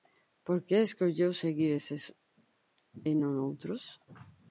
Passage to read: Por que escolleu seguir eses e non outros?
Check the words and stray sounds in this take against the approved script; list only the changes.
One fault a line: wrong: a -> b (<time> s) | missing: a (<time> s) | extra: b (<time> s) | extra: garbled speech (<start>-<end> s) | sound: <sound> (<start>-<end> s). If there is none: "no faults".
no faults